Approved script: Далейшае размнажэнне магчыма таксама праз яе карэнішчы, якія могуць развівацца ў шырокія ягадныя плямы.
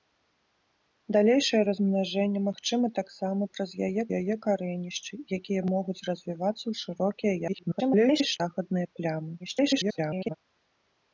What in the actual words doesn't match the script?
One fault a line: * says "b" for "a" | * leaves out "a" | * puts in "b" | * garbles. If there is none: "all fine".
* puts in "яе"
* garbles
* garbles